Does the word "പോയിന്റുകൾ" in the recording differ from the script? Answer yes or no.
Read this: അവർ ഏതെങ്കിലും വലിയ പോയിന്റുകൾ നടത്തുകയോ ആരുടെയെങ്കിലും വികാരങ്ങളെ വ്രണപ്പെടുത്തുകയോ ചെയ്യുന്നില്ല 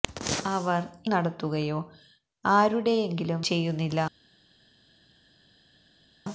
yes